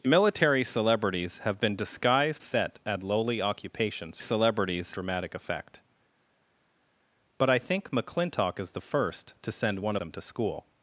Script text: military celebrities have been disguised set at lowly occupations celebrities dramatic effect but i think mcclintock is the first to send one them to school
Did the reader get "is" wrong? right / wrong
right